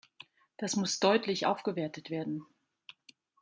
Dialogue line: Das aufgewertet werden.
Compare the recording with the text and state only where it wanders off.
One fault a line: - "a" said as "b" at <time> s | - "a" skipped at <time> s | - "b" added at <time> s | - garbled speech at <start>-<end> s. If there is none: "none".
- "muss deutlich" added at 0.8 s